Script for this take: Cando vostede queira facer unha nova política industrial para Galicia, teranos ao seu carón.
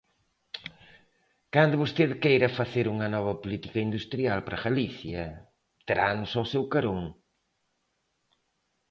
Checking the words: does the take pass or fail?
pass